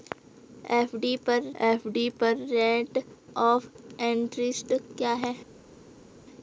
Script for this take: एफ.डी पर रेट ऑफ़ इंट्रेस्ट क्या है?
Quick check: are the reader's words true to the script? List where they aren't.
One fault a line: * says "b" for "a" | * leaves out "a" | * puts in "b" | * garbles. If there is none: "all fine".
* puts in "एफ.डी पर"